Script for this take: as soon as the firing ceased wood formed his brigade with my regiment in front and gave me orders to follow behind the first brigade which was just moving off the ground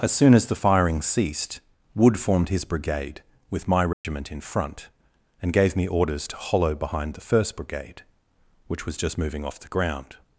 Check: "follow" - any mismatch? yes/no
yes